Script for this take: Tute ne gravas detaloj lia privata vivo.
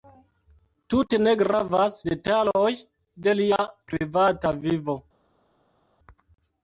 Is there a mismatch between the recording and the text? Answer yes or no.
yes